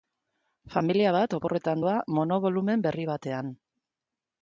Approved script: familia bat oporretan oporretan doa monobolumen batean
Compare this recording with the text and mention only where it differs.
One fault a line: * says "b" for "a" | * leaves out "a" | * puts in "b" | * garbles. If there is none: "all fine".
* leaves out "oporretan"
* puts in "berri"